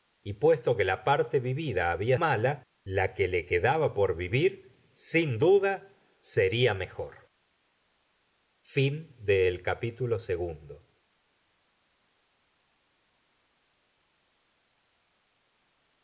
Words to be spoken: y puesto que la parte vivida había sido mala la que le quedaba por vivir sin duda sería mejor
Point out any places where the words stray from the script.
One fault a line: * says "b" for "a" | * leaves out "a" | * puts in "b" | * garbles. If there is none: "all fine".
* leaves out "sido"